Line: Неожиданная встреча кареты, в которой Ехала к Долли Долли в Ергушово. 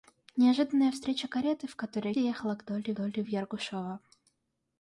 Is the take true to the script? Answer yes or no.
yes